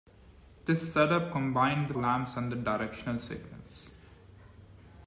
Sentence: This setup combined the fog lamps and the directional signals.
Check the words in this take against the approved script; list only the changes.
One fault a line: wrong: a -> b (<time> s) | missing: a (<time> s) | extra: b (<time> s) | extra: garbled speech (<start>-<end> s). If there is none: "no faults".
missing: fog (1.9 s)